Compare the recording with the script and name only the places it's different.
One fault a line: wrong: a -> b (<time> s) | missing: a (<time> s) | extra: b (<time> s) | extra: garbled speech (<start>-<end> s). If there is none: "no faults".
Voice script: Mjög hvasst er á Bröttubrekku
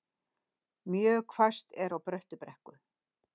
no faults